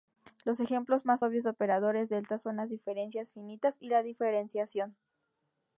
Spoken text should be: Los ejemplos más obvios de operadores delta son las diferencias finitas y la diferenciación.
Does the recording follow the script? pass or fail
pass